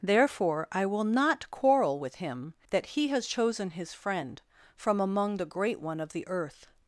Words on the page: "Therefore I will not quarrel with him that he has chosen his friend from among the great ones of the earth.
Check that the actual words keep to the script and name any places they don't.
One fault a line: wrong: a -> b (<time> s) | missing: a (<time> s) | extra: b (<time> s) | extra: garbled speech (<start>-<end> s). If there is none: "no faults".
wrong: ones -> one (5.8 s)